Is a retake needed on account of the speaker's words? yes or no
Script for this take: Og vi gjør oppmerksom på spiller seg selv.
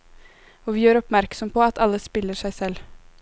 yes